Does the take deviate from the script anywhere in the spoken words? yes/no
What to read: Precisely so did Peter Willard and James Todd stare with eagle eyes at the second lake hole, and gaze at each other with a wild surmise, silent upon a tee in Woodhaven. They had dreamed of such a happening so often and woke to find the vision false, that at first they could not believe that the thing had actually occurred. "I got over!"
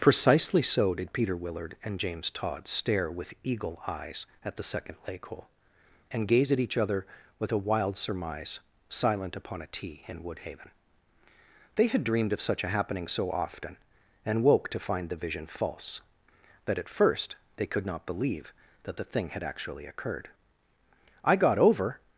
no